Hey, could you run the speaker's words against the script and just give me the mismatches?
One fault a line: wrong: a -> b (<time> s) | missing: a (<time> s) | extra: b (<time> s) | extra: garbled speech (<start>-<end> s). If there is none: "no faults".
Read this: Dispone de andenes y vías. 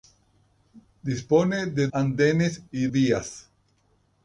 no faults